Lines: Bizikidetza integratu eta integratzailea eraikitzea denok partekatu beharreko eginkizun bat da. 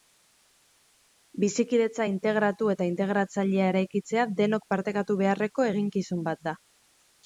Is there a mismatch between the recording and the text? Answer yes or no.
no